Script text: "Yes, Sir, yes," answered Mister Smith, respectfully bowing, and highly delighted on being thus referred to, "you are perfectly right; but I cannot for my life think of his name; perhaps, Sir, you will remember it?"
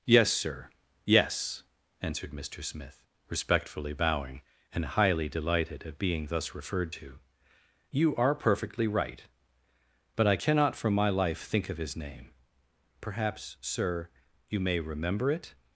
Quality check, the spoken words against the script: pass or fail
fail